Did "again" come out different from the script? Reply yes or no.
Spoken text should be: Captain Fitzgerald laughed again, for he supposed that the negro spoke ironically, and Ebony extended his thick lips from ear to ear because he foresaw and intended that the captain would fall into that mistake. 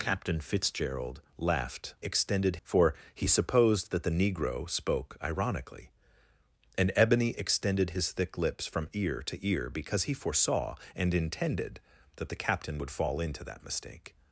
yes